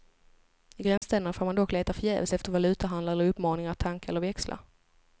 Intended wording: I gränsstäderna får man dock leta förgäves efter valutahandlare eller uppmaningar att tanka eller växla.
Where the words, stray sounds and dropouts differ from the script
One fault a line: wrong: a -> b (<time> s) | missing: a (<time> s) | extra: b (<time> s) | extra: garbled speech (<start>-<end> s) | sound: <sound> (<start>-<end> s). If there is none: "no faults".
sound: dropout (1.0-1.0 s)